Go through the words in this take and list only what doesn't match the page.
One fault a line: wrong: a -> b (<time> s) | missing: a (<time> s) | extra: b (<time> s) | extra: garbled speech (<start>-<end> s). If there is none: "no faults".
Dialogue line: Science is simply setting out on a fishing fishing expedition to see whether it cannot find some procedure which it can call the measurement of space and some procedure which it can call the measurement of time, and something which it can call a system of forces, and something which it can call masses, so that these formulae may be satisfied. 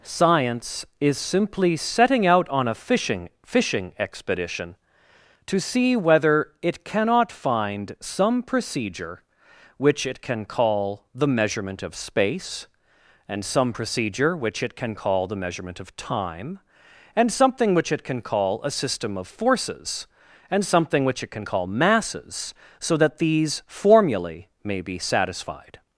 no faults